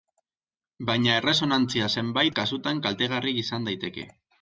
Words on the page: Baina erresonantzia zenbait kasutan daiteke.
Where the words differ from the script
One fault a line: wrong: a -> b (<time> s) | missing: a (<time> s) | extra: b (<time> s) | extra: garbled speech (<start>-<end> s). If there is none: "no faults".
extra: kaltegarria izan (2.9 s)